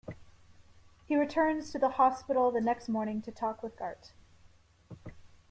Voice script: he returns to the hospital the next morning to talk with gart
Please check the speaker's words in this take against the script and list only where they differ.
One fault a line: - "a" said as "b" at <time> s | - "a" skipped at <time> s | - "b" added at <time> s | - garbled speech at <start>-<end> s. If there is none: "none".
none